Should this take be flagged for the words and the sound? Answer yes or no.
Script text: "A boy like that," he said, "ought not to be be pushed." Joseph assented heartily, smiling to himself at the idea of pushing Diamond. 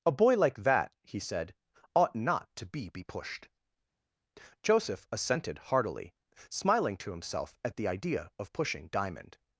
no